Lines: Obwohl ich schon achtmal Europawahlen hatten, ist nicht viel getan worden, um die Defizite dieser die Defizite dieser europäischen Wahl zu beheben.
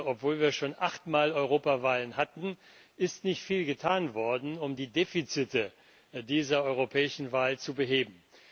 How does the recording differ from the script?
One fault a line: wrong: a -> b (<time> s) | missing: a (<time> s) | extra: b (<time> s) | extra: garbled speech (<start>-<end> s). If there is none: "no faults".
wrong: ich -> wir (0.4 s)
missing: die Defizite dieser (6.6 s)